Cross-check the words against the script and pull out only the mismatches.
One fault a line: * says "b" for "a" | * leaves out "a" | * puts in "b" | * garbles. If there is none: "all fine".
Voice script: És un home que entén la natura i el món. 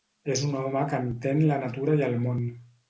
all fine